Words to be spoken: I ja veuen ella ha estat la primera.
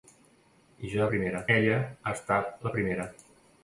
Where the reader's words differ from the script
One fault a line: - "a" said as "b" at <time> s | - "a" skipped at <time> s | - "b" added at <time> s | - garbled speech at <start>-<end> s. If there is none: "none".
- "veuen" said as "primera" at 1.1 s